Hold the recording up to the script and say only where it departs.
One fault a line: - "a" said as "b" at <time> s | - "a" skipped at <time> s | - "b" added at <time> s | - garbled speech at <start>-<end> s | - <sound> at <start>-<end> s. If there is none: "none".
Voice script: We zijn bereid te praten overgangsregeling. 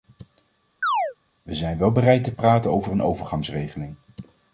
- chirp at 0.8-1.1 s
- "wel" added at 1.8 s
- "over een" added at 2.7 s